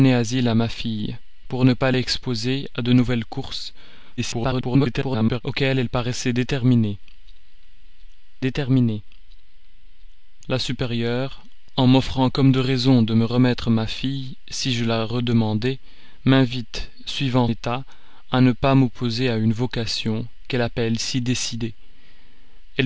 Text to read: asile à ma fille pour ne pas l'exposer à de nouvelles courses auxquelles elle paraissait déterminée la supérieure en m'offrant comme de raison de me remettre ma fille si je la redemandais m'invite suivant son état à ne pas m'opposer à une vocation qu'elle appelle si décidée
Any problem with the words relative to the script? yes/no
yes